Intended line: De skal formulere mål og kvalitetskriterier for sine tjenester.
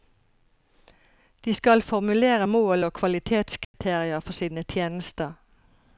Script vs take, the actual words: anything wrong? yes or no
no